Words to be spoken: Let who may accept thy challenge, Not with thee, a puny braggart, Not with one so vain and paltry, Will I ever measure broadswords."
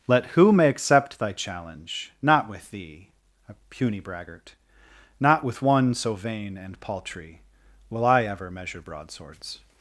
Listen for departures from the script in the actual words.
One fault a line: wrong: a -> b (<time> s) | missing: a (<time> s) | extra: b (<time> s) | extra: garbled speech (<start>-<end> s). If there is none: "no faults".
no faults